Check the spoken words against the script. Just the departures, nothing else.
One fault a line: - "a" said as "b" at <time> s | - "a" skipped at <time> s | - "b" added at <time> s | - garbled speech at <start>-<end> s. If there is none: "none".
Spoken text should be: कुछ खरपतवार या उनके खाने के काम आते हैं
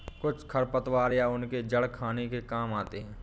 - "जड़" added at 1.7 s